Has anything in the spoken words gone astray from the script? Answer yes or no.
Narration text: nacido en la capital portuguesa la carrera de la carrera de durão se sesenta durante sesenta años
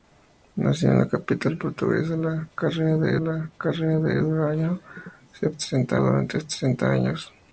no